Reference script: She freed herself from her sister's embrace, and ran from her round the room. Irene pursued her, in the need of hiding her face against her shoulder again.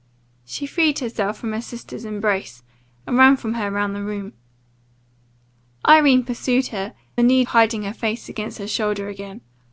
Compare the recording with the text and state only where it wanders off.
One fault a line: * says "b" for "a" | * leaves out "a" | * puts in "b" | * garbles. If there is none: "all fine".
* leaves out "in"
* leaves out "of"